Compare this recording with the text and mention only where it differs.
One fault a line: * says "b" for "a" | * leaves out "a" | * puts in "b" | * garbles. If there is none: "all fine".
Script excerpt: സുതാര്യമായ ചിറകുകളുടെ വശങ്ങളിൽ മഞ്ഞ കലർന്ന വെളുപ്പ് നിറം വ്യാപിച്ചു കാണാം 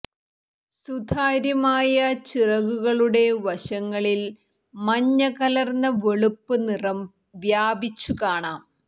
all fine